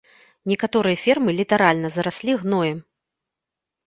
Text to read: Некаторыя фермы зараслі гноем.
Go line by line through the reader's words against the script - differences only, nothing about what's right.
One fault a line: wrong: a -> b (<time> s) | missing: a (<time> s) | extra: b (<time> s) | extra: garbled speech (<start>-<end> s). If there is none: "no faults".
extra: літаральна (1.4 s)